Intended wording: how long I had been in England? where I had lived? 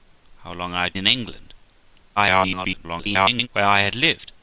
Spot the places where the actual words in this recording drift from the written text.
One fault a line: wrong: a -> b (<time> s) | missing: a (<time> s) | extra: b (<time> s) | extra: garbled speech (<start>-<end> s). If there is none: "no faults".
missing: been (1.0 s)
extra: garbled speech (2.2-3.5 s)